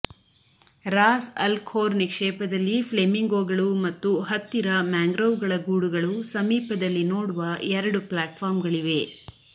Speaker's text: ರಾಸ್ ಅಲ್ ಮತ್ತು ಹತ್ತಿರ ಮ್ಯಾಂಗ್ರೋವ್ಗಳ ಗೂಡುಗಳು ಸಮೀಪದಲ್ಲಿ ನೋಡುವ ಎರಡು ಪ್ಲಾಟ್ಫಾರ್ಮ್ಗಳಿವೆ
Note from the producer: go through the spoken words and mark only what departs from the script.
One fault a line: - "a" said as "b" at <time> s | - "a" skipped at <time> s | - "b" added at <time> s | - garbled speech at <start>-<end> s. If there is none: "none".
- "ಖೋರ್ ನಿಕ್ಷೇಪದಲ್ಲಿ ಫ್ಲೆಮಿಂಗೋಗಳು" added at 1.6 s